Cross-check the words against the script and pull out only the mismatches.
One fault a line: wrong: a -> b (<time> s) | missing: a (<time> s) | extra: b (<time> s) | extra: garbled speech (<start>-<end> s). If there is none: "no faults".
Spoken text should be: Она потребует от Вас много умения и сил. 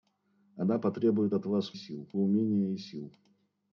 wrong: много -> сил (1.7 s)